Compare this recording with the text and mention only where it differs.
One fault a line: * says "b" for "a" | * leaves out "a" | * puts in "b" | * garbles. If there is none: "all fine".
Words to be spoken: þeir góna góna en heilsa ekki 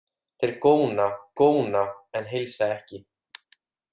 all fine